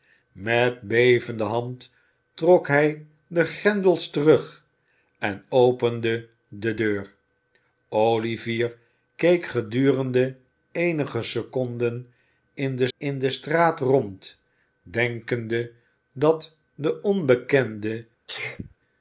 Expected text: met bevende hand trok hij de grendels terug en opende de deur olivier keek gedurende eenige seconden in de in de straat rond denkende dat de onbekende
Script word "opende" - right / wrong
right